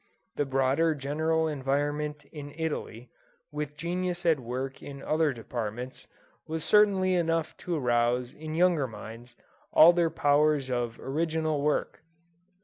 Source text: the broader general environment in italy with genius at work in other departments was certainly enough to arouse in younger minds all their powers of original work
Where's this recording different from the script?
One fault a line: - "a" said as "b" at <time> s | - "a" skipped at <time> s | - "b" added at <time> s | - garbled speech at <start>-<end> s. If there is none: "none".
none